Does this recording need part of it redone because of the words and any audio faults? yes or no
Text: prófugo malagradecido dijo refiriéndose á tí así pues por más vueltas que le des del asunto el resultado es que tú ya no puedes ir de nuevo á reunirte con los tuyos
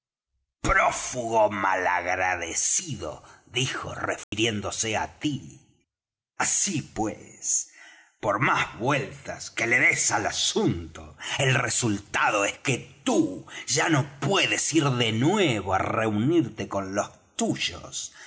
yes